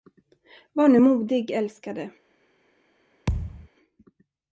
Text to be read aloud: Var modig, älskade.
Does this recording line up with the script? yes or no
no